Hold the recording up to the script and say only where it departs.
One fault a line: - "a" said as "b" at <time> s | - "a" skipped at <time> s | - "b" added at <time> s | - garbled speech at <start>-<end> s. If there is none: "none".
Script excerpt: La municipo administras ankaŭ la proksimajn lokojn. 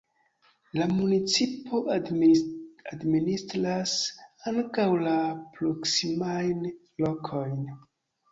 none